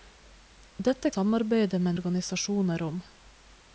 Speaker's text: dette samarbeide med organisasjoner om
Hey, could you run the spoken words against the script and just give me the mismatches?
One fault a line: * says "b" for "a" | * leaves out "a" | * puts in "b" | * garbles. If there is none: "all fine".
all fine